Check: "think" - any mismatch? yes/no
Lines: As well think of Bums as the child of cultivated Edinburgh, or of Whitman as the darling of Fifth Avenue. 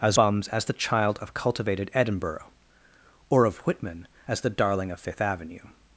yes